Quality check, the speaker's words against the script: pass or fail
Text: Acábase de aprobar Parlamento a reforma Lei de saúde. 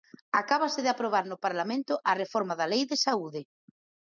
fail